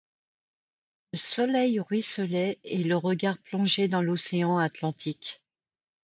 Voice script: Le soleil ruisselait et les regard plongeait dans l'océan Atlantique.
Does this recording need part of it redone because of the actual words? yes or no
yes